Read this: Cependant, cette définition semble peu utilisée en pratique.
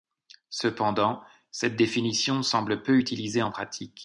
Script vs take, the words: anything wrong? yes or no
no